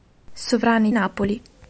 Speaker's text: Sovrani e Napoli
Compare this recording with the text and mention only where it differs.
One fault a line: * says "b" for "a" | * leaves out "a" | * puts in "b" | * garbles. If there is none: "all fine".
all fine